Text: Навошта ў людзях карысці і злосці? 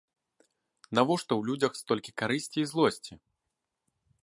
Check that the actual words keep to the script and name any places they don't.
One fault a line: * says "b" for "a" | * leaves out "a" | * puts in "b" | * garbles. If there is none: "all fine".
* puts in "столькі"